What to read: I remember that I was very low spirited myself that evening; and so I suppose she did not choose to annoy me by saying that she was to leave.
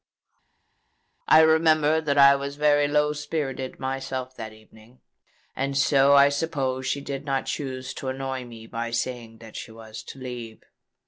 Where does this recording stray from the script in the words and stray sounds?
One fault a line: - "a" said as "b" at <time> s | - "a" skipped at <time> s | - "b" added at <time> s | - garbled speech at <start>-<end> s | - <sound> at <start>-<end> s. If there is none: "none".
none